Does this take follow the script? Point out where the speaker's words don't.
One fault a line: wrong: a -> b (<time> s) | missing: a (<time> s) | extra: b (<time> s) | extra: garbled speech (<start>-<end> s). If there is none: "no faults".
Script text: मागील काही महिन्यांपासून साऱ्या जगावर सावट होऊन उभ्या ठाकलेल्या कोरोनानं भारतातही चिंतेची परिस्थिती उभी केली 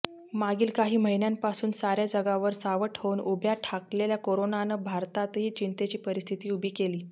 no faults